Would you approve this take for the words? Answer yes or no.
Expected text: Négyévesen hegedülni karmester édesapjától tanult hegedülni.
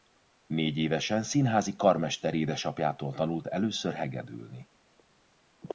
no